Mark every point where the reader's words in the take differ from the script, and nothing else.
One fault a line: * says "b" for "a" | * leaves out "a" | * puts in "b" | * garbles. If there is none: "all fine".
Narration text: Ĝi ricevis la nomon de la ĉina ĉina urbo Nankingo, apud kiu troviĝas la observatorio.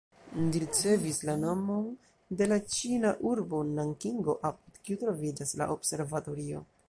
* leaves out "ĉina"